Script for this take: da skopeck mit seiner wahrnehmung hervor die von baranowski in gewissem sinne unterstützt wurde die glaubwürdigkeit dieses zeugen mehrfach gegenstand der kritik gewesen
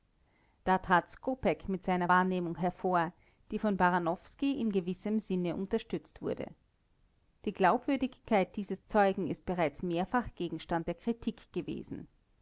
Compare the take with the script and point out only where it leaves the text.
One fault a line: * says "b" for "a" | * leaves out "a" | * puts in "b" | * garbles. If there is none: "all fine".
* puts in "trat"
* puts in "ist bereits"